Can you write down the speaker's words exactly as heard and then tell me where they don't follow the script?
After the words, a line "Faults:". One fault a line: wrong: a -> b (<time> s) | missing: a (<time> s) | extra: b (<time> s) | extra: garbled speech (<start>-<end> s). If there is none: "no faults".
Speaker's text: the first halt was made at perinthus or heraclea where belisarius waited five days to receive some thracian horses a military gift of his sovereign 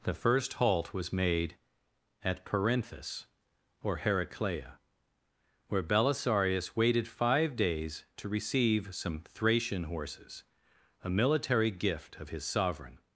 the first halt was made at perinthus or heraclea where belisarius waited five days to receive some thracian horses a military gift of his sovereign
Faults:
no faults